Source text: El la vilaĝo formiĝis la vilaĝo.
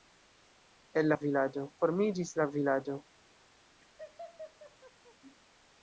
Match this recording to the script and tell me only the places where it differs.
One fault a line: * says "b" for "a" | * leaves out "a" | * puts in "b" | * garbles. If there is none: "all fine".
all fine